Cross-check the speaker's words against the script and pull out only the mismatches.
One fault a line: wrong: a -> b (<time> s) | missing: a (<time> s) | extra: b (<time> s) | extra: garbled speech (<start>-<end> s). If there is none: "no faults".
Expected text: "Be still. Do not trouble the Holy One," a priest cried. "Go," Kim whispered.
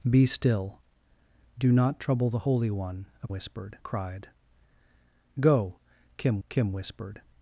wrong: priest -> whispered (3.3 s)
extra: Kim (6.5 s)